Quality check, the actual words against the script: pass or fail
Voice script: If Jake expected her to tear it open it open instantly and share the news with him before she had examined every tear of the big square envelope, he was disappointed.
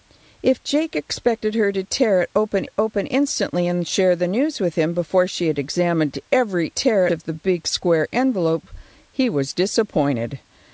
pass